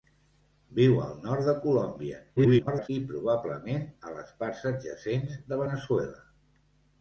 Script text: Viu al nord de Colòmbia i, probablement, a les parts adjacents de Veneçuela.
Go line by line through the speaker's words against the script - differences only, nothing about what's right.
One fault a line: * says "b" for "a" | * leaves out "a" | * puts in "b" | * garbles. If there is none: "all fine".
* garbles